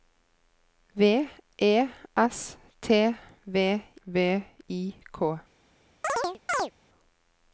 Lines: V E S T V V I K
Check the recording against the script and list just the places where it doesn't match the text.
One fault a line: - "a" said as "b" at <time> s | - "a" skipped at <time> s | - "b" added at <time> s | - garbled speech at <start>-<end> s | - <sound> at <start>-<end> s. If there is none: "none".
- chirp at 6.0-6.7 s